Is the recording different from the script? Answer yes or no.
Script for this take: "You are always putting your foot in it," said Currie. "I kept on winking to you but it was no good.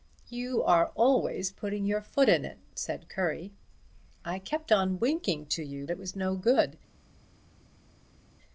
yes